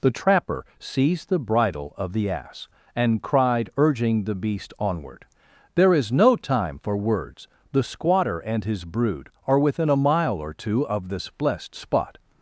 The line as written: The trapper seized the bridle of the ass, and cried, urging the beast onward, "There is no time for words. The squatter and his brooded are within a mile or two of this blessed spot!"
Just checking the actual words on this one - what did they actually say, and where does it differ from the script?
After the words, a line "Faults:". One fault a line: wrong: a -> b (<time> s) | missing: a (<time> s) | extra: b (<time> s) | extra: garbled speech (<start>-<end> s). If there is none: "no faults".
The trapper seized the bridle of the ass, and cried, urging the beast onward, "There is no time for words. The squatter and his brood are within a mile or two of this blessed spot!"
Faults:
wrong: brooded -> brood (8.9 s)